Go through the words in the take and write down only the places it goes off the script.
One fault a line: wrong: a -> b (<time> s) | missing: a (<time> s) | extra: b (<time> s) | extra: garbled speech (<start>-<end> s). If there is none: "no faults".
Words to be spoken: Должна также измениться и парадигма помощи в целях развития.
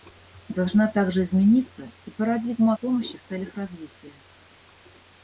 no faults